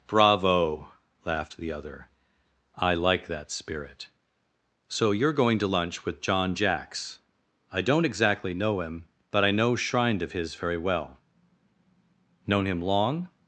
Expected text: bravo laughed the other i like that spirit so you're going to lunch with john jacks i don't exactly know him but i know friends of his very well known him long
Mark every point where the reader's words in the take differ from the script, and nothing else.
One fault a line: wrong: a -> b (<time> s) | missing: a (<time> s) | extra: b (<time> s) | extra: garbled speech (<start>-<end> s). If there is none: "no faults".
wrong: friends -> shrined (9.7 s)